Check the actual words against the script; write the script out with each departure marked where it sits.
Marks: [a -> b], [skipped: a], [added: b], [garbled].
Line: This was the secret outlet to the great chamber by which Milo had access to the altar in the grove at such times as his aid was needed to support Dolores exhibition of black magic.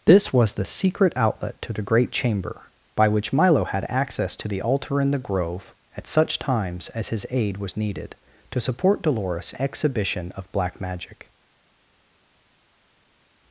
This was the secret outlet to the great chamber by which Milo had access to the altar in the grove at such times as his aid was needed to support Dolores exhibition of black magic.